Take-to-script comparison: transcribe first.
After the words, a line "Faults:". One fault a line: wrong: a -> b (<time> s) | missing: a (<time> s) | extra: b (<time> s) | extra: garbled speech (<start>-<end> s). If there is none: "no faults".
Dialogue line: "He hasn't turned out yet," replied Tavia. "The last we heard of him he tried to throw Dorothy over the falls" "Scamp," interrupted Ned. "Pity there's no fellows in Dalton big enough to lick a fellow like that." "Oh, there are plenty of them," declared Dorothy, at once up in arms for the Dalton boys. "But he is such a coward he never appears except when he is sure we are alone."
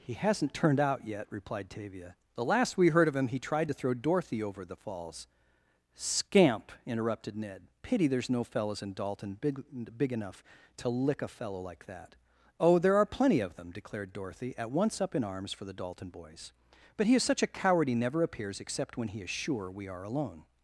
"He hasn't turned out yet," replied Tavia. "The last we heard of him he tried to throw Dorothy over the falls" "Scamp," interrupted Ned. "Pity there's no fellows in Dalton big big enough to lick a fellow like that." "Oh, there are plenty of them," declared Dorothy, at once up in arms for the Dalton boys. "But he is such a coward he never appears except when he is sure we are alone."
Faults:
extra: big (10.0 s)